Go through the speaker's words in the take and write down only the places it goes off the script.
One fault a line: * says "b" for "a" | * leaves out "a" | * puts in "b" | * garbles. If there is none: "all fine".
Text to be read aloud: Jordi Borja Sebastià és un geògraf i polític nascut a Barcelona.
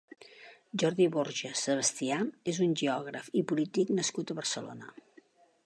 all fine